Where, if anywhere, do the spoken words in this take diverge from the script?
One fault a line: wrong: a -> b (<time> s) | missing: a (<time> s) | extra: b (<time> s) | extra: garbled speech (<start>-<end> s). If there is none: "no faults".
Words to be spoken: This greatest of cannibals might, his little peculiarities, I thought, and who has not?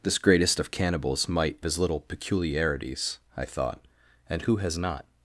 no faults